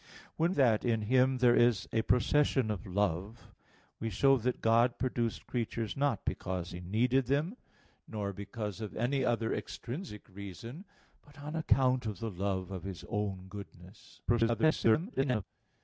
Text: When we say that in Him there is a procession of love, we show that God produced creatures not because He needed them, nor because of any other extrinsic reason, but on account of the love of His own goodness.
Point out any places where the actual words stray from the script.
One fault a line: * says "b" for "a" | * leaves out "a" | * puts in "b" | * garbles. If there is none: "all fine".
* leaves out "we say"
* garbles